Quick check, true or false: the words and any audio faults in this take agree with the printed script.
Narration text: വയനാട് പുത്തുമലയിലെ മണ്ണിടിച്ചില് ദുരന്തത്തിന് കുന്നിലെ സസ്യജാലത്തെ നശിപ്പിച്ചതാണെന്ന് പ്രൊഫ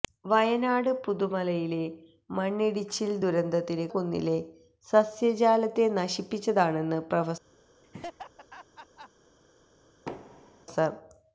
false